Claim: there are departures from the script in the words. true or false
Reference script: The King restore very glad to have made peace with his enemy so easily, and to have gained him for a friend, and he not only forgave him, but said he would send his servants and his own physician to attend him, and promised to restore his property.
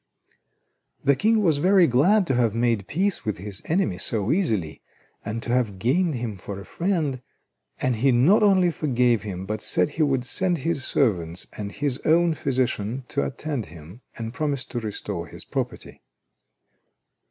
true